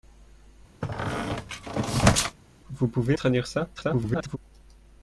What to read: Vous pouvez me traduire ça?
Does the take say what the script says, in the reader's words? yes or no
no